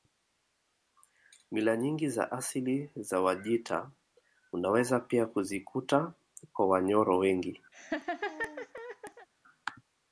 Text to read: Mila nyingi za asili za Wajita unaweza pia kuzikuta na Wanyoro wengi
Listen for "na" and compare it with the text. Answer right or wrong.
wrong